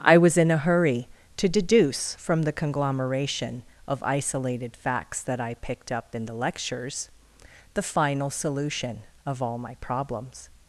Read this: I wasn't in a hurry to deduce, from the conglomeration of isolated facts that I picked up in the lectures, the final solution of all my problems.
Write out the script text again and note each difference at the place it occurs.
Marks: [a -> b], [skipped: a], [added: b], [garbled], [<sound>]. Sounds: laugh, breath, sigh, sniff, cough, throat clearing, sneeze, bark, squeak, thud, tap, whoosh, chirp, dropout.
I [wasn't -> was] in a hurry to deduce, from the conglomeration of isolated facts that I picked up in the lectures, the final solution of all my problems.